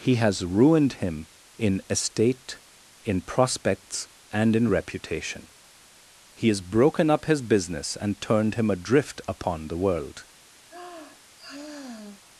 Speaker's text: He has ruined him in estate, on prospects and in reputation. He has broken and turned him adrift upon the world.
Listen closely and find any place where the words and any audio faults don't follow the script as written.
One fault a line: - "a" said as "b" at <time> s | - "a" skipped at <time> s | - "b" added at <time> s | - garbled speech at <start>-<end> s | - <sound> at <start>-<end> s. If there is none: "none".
- "on" said as "in" at 3.0 s
- "up his business" added at 7.1 s
- sigh at 10.7-12.2 s